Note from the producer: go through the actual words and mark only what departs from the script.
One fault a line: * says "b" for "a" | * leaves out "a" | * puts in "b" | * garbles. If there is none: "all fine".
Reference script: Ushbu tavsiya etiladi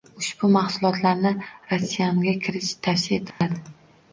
* puts in "mahsulotlarni ratsionga kiritish"